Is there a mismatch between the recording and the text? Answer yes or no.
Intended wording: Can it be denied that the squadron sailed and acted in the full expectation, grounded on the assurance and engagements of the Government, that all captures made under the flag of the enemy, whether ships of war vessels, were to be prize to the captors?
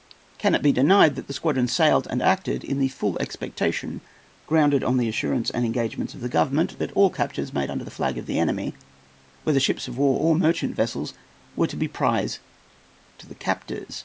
yes